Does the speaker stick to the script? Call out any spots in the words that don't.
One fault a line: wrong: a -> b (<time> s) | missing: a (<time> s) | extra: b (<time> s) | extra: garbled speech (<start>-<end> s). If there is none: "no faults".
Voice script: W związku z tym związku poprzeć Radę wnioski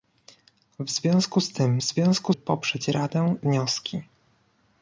no faults